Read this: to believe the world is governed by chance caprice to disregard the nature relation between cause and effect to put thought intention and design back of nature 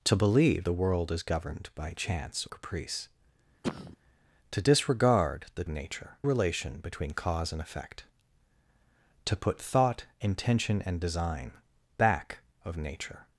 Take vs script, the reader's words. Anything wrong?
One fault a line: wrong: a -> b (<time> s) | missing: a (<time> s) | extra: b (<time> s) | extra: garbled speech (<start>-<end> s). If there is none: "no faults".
no faults